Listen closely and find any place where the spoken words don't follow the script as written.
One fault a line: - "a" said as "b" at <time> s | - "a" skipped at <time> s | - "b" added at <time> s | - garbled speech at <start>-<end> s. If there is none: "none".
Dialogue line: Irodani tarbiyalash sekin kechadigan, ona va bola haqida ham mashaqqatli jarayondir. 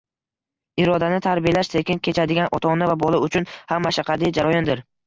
- "ota" added at 2.6 s
- "haqida" said as "uchun" at 3.3 s